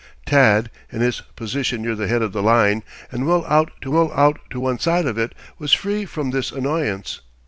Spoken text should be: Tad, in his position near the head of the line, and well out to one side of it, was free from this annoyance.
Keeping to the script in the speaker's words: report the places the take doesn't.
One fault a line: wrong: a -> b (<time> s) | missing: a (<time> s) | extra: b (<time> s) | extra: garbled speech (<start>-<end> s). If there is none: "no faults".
extra: well out to (3.9 s)